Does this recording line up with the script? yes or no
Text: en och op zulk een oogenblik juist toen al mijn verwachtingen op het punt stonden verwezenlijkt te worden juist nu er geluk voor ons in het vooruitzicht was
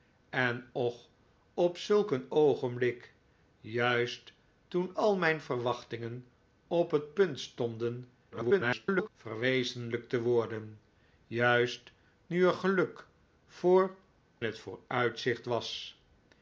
no